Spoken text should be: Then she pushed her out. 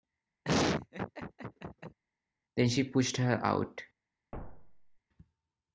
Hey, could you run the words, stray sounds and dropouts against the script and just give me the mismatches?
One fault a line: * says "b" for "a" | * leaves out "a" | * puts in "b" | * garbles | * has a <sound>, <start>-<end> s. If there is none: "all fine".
* has a laugh, 0.4-2.0 s
* has a thud, 4.3-5.0 s